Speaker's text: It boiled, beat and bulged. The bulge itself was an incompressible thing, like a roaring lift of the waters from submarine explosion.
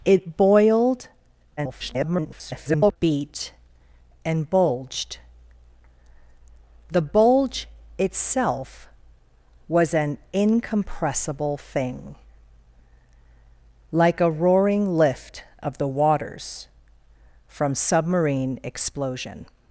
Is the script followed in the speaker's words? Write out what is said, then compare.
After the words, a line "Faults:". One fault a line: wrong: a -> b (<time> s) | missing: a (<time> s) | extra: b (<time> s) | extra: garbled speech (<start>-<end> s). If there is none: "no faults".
It boiled, [garbled] beat and bulged. The bulge itself was an incompressible thing, like a roaring lift of the waters from submarine explosion.
Faults:
extra: garbled speech (1.6-3.0 s)